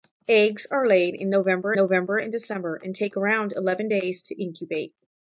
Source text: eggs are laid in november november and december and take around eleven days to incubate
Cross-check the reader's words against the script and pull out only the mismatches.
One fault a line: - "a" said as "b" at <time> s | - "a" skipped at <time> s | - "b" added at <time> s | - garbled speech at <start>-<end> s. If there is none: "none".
none